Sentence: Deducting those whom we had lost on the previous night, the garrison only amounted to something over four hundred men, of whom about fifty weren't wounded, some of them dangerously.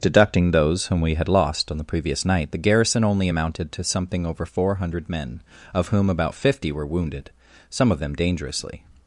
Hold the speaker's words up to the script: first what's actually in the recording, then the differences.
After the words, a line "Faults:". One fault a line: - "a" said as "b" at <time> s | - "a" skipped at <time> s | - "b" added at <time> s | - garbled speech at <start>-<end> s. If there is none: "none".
Deducting those whom we had lost on the previous night, the garrison only amounted to something over four hundred men, of whom about fifty were wounded, some of them dangerously.
Faults:
- "weren't" said as "were" at 6.7 s